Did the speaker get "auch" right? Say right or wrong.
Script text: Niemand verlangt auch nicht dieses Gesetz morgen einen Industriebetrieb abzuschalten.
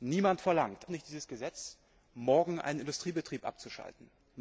wrong